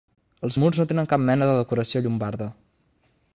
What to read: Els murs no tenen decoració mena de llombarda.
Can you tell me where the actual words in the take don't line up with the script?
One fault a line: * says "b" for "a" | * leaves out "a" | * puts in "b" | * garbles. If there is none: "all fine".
* says "cap" for "decoració"
* puts in "decoració"